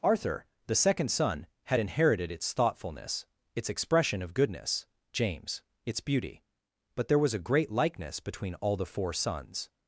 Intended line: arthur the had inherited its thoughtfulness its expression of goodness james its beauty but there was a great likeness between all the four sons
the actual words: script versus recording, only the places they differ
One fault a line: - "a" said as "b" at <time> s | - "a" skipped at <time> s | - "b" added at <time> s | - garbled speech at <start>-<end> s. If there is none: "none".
- "second son" added at 0.8 s